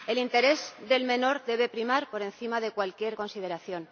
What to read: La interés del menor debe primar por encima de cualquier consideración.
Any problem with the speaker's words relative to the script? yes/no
yes